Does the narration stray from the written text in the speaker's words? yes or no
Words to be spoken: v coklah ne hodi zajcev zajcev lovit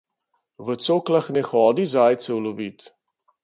yes